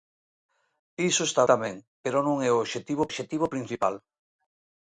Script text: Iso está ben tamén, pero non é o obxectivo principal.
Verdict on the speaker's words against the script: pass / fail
fail